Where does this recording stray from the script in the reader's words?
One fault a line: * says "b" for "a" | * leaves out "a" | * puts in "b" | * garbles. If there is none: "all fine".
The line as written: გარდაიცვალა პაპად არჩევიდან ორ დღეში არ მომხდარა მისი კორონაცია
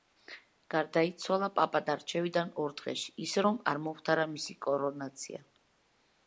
* puts in "ისე რომ"